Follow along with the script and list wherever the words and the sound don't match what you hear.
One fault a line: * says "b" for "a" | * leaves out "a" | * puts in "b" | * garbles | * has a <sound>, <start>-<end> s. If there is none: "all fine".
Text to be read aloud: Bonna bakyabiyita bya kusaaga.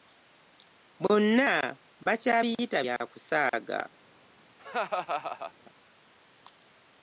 * has a laugh, 4.6-5.5 s